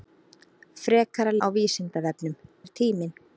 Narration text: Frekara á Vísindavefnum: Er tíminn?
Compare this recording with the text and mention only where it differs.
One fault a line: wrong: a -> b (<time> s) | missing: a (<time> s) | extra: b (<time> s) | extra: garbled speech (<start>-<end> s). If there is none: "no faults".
no faults